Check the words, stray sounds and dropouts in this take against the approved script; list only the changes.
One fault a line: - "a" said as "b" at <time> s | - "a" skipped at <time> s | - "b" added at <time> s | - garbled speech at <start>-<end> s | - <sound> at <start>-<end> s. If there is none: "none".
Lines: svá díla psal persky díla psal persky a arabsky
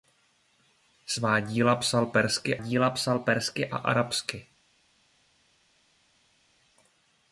none